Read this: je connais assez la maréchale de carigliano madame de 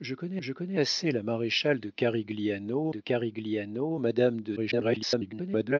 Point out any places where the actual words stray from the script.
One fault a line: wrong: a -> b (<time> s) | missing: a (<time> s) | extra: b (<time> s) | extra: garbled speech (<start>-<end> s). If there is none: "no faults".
extra: je connais (0.4 s)
extra: de carigliano (2.9 s)
extra: garbled speech (4.6-5.8 s)